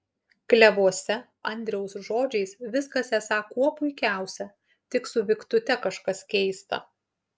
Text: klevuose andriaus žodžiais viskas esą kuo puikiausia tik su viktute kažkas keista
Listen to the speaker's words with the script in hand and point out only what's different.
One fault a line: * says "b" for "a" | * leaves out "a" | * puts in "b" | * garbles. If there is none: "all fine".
all fine